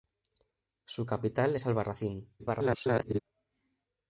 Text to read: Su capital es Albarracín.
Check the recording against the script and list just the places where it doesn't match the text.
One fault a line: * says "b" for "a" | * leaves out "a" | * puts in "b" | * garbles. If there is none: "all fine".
* garbles